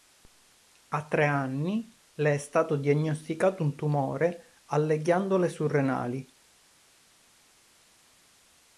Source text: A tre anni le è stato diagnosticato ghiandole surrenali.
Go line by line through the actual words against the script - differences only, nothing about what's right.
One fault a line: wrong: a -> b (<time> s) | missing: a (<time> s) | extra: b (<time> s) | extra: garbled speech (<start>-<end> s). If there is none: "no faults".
extra: un tumore alle (3.6 s)